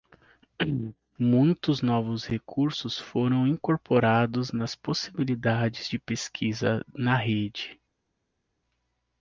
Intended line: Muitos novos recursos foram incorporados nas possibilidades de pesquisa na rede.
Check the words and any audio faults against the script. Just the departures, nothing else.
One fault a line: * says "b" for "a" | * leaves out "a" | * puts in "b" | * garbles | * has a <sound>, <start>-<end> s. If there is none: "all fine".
all fine